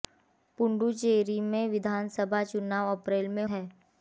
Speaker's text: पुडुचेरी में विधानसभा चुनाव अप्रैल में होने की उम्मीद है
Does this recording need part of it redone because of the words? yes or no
yes